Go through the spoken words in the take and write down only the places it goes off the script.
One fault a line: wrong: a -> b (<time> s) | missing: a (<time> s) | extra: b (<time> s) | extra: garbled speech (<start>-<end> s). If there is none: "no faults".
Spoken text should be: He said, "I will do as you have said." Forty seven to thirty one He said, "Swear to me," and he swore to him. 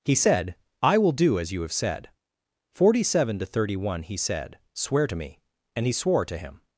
no faults